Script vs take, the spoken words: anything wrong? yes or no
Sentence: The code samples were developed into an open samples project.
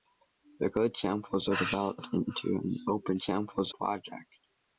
no